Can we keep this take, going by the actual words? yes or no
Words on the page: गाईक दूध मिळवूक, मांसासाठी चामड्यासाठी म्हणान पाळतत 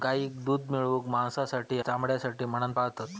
yes